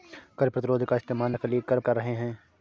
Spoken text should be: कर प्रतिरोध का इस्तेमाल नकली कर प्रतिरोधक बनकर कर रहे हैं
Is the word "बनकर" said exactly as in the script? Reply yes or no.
no